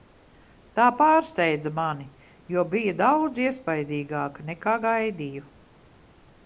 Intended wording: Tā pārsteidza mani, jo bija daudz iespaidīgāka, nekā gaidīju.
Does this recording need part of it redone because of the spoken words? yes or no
no